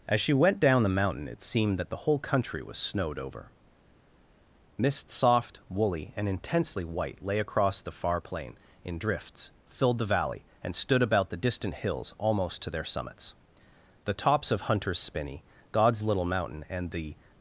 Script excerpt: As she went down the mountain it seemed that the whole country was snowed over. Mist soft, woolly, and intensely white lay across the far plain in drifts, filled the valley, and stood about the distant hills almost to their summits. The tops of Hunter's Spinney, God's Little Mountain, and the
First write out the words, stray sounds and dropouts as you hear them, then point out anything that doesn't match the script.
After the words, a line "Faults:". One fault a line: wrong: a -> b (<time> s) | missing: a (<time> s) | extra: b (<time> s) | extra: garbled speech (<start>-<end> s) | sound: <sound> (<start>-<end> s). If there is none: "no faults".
As she went down the mountain it seemed that the whole country was snowed over. Mist soft, woolly, and intensely white lay across the far plain in drifts, filled the valley, and stood about the distant hills almost to their summits. The tops of Hunter's Spinney, God's Little Mountain, and the
Faults:
no faults